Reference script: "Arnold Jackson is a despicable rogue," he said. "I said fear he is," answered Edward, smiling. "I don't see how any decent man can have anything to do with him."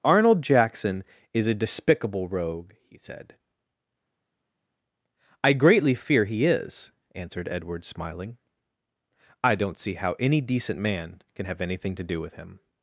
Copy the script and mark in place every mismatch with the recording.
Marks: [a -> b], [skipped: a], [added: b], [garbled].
"Arnold Jackson is a despicable rogue," he said. "I [said -> greatly] fear he is," answered Edward, smiling. "I don't see how any decent man can have anything to do with him."